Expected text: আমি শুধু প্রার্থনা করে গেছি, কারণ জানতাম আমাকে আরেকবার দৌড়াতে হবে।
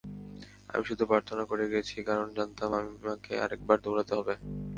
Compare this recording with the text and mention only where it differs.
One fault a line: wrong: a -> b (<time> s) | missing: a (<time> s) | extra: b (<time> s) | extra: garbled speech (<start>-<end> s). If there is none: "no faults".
no faults